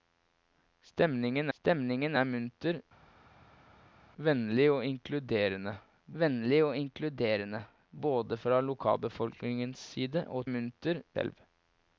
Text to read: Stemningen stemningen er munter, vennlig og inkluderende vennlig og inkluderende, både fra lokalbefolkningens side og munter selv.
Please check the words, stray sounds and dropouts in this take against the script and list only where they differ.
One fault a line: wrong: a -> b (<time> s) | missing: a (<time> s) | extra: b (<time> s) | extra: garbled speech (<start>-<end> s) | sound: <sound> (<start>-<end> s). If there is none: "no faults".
no faults